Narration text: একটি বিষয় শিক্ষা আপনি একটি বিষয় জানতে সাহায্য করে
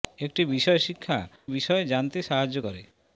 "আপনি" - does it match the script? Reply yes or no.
no